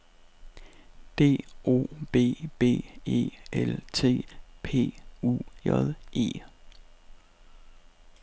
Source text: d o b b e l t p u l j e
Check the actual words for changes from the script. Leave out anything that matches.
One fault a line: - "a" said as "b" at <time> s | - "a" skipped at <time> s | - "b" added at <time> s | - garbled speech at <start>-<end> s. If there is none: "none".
- "l" skipped at 5.4 s